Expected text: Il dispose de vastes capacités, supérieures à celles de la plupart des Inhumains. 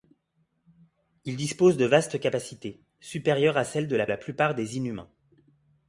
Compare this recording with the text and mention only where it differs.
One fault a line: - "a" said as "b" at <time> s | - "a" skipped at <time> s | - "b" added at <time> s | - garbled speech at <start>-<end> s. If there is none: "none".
- "la" added at 4.1 s